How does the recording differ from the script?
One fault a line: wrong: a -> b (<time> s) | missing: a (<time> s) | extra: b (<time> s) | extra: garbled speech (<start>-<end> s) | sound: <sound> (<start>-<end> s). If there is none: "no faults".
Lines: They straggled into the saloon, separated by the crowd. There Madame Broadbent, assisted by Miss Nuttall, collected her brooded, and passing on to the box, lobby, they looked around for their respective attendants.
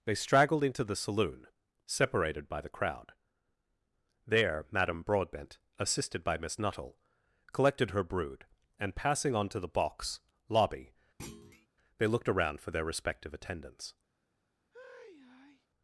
wrong: brooded -> brood (8.0 s)
sound: thud (11.2-11.7 s)
sound: sigh (14.7-15.7 s)